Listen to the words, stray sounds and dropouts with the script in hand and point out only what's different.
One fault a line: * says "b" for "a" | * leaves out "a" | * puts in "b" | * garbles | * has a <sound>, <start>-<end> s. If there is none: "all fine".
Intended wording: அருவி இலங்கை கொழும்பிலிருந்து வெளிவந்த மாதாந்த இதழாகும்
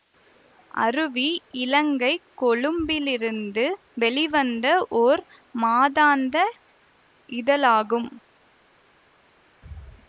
* puts in "ஓர்"